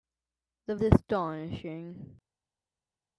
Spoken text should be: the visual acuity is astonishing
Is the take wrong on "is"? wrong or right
wrong